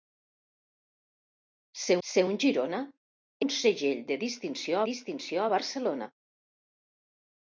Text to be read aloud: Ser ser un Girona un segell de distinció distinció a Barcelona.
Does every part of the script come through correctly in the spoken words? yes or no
yes